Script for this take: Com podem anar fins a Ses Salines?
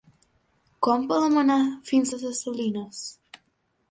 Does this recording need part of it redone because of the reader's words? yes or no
no